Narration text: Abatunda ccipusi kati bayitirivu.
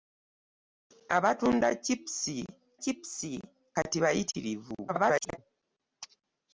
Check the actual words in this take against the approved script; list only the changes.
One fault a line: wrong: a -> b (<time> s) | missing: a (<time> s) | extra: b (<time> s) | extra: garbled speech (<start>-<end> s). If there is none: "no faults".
extra: ccipusi (2.8 s)
extra: garbled speech (4.9-5.4 s)